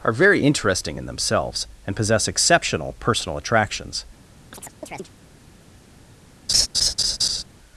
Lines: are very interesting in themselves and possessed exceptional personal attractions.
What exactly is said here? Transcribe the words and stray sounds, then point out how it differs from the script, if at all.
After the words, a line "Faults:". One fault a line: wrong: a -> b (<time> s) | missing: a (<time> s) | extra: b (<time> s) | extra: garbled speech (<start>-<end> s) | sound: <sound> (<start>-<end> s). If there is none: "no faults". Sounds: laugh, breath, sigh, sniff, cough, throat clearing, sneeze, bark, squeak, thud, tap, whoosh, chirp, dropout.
are very interesting in themselves and possess exceptional personal attractions.
Faults:
wrong: possessed -> possess (1.9 s)
sound: chirp (4.5-5.1 s)
sound: laugh (6.5-7.4 s)